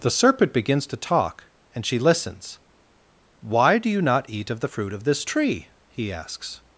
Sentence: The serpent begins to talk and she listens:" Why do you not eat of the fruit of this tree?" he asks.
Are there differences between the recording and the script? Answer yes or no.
no